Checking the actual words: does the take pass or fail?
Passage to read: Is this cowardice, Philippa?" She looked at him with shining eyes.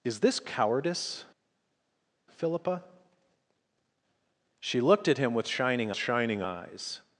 fail